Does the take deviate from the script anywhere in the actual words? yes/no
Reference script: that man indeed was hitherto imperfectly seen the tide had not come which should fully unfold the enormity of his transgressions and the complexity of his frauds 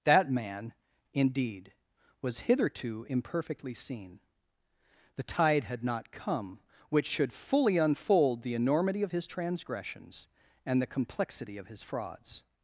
no